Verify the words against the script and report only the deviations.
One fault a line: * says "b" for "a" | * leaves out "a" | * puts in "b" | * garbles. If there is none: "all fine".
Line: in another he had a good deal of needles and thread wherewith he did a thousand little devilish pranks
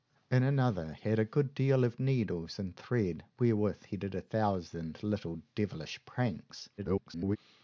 * leaves out "he"
* garbles